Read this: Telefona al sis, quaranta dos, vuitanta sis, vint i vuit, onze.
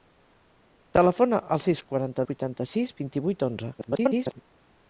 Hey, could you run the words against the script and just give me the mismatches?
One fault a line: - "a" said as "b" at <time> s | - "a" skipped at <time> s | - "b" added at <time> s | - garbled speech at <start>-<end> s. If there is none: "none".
- "dos" skipped at 2.2 s
- garbled speech at 3.8-4.4 s